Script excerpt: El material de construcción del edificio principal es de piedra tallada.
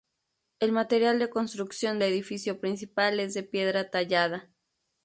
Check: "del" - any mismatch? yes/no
yes